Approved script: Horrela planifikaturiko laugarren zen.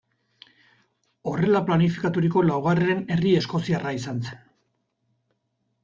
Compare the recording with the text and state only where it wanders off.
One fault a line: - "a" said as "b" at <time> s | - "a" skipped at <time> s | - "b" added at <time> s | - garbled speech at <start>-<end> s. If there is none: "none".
- "herri eskoziarra izan" added at 3.2 s